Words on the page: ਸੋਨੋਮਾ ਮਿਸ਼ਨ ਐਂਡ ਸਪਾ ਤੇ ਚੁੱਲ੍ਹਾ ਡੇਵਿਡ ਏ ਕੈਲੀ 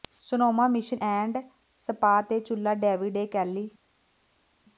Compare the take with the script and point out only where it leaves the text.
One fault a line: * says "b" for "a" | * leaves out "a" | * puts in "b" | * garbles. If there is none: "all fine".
all fine